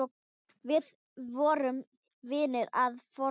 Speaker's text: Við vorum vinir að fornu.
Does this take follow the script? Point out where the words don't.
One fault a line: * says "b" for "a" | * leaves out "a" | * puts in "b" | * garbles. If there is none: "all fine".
all fine